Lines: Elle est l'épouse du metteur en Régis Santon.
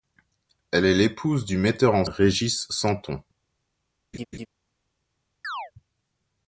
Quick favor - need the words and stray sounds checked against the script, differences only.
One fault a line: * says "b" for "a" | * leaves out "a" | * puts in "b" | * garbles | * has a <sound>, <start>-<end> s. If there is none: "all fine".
* has a laugh, 4.1-4.5 s
* has a chirp, 5.4-5.7 s